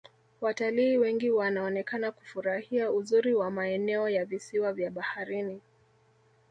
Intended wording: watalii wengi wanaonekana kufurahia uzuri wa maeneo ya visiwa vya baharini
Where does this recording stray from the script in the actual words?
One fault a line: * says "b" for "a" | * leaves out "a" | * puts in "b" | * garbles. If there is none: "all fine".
all fine